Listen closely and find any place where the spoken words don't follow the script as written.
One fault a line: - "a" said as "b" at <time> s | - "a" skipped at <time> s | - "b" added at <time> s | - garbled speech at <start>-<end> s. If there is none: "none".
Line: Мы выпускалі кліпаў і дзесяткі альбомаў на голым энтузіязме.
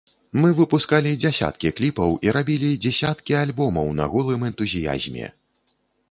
- "дзясяткі" added at 1.2 s
- "рабілі" added at 2.4 s